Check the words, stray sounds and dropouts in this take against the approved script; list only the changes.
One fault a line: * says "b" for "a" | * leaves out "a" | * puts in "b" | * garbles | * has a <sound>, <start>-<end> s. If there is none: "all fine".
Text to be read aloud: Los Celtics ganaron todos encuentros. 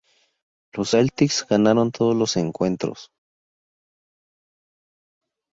* puts in "los"